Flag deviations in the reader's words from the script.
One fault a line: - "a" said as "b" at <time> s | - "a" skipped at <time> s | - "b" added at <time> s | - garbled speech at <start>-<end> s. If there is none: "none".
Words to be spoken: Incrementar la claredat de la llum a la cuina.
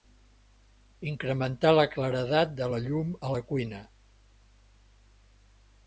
none